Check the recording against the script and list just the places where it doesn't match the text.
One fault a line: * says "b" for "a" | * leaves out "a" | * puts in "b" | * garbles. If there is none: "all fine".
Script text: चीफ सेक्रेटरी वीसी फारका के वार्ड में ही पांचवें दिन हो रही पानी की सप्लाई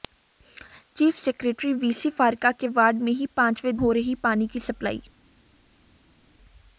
* leaves out "दिन"